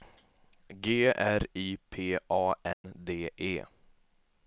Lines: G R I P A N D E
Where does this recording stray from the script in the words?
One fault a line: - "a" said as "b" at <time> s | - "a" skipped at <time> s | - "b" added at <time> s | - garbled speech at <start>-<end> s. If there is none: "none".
none